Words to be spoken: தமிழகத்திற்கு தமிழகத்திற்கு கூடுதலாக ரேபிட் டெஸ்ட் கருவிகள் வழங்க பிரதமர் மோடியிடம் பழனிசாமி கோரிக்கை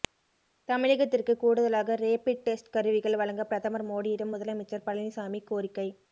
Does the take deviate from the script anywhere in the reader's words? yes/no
yes